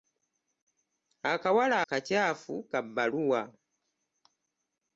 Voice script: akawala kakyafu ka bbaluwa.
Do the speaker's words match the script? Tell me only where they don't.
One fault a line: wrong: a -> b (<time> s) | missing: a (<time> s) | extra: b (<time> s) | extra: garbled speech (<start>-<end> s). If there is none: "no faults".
no faults